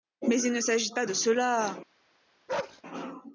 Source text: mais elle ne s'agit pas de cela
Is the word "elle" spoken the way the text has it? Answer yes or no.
no